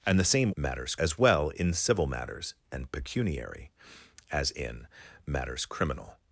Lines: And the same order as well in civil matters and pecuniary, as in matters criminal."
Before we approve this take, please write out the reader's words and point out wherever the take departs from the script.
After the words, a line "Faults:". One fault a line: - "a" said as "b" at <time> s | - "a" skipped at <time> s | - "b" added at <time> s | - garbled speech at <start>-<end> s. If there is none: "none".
And the same matters as well in civil matters and pecuniary, as in matters criminal."
Faults:
- "order" said as "matters" at 0.6 s